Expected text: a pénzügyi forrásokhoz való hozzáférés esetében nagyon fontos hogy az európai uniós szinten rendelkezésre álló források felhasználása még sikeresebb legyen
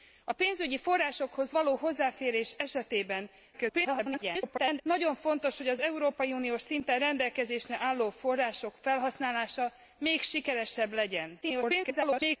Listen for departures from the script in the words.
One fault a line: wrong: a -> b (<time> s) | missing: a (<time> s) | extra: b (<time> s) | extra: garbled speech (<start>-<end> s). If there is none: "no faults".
extra: garbled speech (3.5-4.8 s)
extra: garbled speech (11.4-12.4 s)